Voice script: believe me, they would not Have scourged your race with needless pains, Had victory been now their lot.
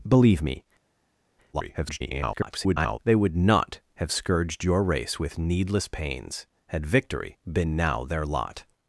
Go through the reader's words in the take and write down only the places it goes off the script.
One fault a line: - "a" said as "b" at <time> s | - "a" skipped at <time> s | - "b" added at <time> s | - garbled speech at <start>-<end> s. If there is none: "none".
- garbled speech at 1.5-3.0 s